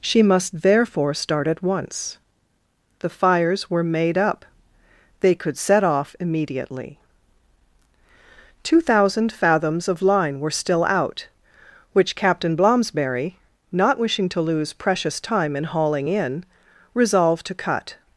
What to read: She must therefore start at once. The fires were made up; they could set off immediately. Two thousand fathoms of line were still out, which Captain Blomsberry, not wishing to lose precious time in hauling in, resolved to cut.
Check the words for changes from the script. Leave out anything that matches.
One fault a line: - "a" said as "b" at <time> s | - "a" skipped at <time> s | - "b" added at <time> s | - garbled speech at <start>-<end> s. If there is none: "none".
none